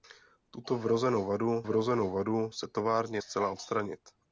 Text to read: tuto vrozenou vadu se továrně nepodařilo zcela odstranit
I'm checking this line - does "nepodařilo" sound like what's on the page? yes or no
no